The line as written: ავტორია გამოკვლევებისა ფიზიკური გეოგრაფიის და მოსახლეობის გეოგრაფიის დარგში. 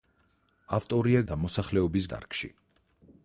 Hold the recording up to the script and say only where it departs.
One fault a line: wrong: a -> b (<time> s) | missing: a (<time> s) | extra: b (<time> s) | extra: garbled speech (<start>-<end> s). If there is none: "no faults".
missing: გამოკვლევებისა ფიზიკური გეოგრაფიის (1.2 s)
missing: გეოგრაფიის (2.1 s)